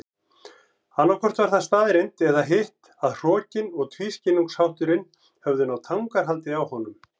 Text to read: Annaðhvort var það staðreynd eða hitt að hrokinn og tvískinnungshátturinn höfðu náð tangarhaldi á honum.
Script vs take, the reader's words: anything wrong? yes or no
no